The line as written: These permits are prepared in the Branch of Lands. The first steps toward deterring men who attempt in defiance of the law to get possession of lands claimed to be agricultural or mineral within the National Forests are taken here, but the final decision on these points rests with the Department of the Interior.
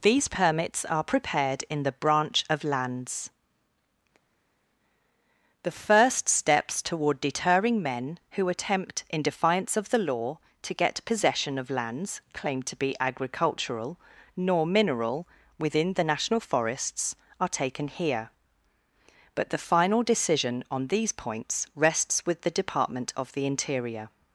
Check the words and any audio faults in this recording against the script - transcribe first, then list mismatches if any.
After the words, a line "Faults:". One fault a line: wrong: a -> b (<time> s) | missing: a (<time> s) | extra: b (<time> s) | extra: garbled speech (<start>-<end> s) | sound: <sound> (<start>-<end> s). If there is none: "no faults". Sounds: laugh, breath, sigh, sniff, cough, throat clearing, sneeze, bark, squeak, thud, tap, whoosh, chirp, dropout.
These permits are prepared in the Branch of Lands. The first steps toward deterring men who attempt in defiance of the law to get possession of lands claimed to be agricultural nor mineral within the National Forests are taken here, but the final decision on these points rests with the Department of the Interior.
Faults:
wrong: or -> nor (14.4 s)